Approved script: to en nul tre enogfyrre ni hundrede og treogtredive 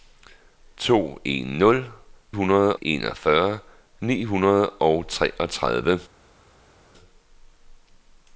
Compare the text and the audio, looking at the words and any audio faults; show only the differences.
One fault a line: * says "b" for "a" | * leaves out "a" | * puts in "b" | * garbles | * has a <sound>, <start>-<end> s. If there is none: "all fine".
* says "hundrede" for "tre"